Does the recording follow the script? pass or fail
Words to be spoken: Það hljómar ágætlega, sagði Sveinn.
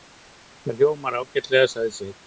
pass